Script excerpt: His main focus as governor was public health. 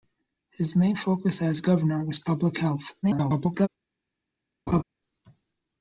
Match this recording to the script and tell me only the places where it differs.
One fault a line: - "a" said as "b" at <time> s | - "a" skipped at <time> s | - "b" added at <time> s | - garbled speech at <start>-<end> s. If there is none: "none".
- garbled speech at 3.0-3.7 s